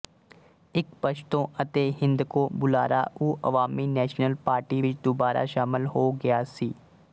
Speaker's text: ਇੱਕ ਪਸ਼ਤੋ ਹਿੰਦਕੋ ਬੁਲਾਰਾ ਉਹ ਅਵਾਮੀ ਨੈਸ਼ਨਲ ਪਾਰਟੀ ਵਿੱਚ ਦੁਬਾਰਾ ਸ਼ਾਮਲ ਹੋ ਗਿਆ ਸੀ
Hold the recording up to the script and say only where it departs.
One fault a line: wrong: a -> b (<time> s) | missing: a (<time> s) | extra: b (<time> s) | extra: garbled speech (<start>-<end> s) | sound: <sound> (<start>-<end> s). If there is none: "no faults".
extra: ਅਤੇ (1.6 s)